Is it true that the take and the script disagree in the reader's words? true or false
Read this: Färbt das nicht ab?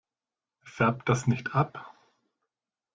false